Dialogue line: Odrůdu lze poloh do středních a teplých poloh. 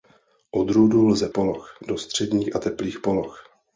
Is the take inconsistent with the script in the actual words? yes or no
no